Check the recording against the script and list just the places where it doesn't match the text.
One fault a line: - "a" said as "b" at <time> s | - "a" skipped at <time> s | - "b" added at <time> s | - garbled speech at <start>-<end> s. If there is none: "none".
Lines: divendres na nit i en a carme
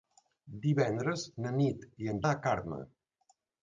none